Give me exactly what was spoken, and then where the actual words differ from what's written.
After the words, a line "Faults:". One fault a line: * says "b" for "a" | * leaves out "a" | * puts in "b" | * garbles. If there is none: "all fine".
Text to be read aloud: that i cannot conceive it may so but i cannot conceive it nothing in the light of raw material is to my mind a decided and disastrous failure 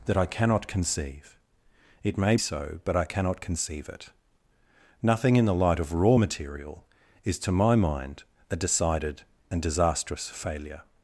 that i cannot conceive it may so but i cannot conceive it nothing in the light of raw material is to my mind a decided and disastrous failure
Faults:
all fine